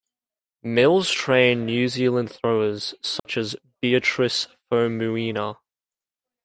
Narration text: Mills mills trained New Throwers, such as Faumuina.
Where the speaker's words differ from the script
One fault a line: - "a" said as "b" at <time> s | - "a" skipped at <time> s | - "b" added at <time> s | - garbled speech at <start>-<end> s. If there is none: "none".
- "mills" skipped at 1.1 s
- "Zealand" added at 1.9 s
- "Beatrice" added at 3.8 s